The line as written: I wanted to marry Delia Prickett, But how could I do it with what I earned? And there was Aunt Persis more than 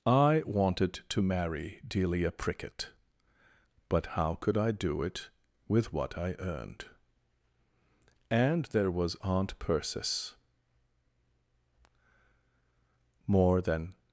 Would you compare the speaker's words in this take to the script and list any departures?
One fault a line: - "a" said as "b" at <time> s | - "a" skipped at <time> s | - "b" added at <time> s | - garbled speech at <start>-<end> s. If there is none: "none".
none